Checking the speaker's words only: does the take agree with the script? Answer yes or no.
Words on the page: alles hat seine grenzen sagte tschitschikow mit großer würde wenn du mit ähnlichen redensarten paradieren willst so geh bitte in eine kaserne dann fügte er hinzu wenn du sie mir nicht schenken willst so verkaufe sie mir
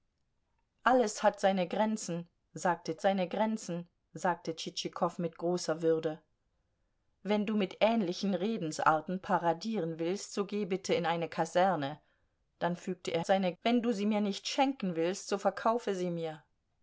no